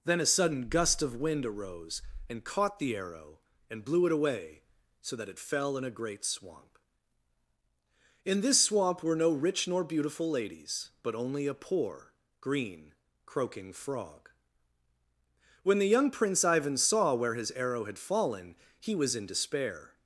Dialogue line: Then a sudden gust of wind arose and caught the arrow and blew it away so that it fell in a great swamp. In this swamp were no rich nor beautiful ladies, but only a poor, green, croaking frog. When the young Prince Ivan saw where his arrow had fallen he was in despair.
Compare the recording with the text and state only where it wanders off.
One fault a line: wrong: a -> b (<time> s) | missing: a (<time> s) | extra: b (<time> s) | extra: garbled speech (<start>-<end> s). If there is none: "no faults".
no faults